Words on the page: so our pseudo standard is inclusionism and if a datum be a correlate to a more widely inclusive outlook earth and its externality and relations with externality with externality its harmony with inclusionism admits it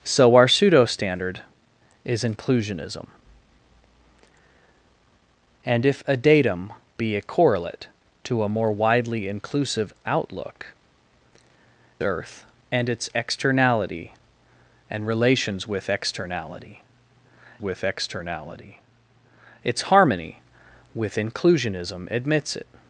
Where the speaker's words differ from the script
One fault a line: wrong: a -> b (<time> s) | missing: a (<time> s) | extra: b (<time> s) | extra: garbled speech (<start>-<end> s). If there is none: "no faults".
no faults